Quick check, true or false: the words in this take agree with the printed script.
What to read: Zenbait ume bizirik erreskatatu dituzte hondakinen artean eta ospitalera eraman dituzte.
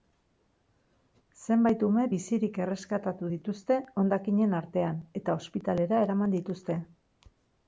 true